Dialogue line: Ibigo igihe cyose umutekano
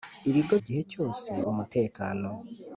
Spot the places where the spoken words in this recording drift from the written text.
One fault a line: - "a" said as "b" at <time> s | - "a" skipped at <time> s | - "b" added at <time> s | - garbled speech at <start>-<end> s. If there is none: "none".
none